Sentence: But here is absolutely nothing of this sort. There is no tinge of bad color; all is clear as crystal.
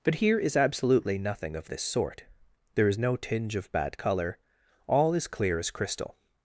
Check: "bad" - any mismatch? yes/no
no